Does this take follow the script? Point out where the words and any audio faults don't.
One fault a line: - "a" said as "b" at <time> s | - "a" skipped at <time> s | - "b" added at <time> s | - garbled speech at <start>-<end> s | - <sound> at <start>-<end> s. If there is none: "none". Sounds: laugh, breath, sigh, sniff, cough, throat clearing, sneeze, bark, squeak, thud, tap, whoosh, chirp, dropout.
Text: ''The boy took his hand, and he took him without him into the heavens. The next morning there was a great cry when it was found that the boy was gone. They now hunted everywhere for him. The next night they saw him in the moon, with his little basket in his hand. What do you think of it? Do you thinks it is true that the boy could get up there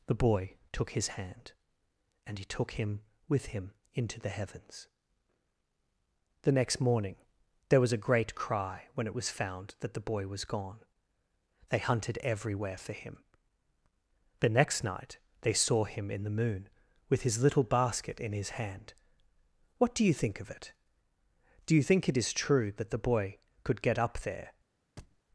- "without" said as "with" at 3.3 s
- "now" skipped at 11.8 s
- "thinks" said as "think" at 21.8 s
- thud at 25.0-25.2 s